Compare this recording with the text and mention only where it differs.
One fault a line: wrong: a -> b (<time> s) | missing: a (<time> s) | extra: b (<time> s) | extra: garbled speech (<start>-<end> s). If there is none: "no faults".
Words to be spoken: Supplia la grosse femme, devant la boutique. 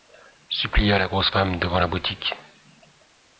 no faults